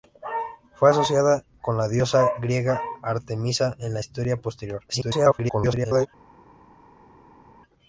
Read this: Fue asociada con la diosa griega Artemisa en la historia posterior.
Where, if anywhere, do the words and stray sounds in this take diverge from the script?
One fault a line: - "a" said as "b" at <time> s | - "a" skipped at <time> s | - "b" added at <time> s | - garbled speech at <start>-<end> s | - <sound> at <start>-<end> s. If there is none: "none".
- garbled speech at 4.9-6.1 s